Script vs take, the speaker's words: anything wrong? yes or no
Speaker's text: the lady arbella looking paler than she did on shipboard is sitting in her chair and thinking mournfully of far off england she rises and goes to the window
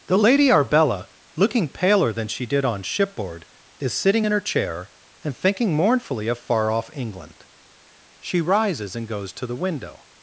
no